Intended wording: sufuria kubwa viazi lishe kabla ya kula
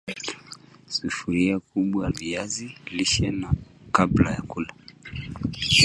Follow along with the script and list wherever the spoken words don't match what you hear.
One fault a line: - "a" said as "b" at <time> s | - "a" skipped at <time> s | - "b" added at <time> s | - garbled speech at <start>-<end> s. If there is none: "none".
none